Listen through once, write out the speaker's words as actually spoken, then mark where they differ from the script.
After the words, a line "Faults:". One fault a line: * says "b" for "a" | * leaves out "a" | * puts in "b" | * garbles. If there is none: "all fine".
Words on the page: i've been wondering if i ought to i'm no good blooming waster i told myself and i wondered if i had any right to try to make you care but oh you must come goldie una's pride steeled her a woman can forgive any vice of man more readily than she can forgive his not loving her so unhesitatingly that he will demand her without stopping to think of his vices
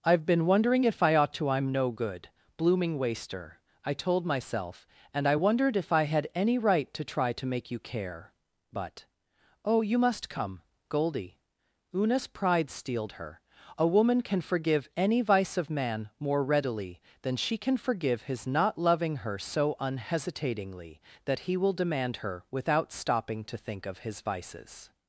i've been wondering if i ought to i'm no good blooming waster i told myself and i wondered if i had any right to try to make you care but oh you must come goldie una's pride steeled her a woman can forgive any vice of man more readily than she can forgive his not loving her so unhesitatingly that he will demand her without stopping to think of his vices
Faults:
all fine